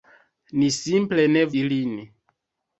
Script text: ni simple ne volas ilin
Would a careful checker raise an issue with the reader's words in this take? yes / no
yes